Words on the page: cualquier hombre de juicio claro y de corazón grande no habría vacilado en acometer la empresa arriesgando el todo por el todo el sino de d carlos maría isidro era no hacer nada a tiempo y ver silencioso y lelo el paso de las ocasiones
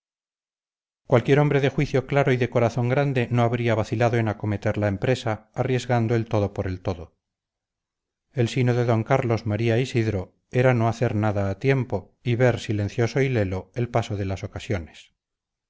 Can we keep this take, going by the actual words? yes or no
yes